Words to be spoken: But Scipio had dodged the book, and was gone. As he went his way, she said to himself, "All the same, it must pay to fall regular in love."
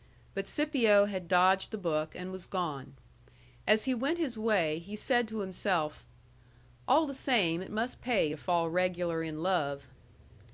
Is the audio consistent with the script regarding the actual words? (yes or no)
no